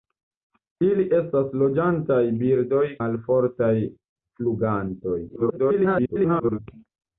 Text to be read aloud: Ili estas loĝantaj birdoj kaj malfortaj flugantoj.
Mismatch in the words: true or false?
true